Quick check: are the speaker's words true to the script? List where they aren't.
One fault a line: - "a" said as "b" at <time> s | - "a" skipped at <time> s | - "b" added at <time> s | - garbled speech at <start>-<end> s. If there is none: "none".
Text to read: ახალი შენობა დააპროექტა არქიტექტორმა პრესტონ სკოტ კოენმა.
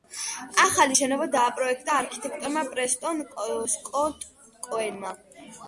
none